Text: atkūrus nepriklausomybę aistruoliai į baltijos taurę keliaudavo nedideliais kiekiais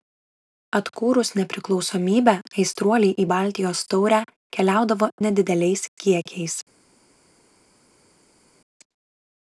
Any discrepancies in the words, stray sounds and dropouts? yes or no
no